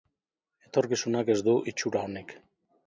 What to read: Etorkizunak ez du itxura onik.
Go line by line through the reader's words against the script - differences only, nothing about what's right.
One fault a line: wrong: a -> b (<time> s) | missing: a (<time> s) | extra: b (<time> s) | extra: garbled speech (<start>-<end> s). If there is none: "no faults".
no faults